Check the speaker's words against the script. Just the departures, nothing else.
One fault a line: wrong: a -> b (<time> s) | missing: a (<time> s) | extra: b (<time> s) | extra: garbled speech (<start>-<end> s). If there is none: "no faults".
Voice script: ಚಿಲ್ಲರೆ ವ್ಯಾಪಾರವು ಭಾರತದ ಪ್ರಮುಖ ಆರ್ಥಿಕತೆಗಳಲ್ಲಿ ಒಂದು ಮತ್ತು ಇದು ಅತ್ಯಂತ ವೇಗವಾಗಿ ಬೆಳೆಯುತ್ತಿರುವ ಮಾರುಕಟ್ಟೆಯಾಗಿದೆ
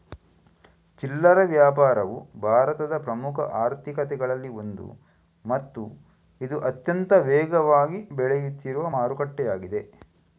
no faults